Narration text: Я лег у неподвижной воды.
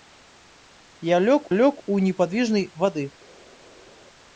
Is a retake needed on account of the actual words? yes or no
yes